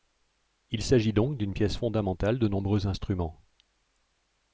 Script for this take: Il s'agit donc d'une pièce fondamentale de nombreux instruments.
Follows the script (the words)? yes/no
yes